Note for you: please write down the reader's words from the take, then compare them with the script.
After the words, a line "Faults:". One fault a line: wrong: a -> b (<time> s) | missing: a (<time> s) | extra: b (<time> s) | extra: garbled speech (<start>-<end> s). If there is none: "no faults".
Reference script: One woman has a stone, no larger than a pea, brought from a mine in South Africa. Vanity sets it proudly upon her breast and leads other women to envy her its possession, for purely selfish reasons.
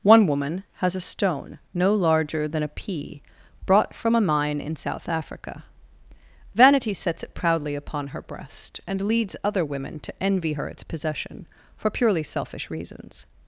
One woman has a stone, no larger than a pea, brought from a mine in South Africa. Vanity sets it proudly upon her breast and leads other women to envy her its possession, for purely selfish reasons.
Faults:
no faults